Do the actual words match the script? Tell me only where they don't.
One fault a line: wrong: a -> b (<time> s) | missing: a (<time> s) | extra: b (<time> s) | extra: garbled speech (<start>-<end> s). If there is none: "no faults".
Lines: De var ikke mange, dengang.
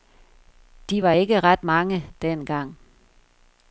extra: ret (1.4 s)